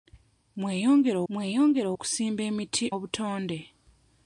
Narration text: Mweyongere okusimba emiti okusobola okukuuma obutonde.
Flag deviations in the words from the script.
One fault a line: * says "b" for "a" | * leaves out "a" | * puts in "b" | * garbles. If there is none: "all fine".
* puts in "mweyongere"
* leaves out "okusobola okukuuma"